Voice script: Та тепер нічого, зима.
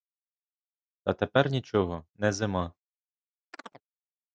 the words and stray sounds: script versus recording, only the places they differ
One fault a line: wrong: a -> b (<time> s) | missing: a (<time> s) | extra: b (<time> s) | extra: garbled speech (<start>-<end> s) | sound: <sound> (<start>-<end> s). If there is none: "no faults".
extra: не (2.1 s)
sound: chirp (3.5-3.8 s)